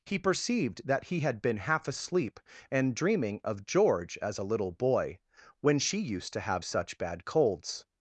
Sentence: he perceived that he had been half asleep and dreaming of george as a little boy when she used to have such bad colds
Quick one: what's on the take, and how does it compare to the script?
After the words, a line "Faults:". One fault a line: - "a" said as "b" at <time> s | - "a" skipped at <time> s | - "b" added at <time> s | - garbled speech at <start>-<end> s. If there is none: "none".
he perceived that he had been half asleep and dreaming of george as a little boy when she used to have such bad colds
Faults:
none